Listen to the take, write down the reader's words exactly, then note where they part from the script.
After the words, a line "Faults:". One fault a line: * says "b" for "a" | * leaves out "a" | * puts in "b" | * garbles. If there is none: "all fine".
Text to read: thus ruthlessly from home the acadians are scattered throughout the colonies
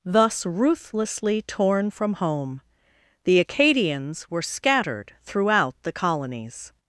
thus ruthlessly torn from home the acadians were scattered throughout the colonies
Faults:
* puts in "torn"
* says "were" for "are"